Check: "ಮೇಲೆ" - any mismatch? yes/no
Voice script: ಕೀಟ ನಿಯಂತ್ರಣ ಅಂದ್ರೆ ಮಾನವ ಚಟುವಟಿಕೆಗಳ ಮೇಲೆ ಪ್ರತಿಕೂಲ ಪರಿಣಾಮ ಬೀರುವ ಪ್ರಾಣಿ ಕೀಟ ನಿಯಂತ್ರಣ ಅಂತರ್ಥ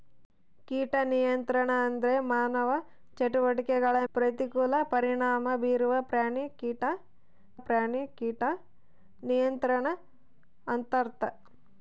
yes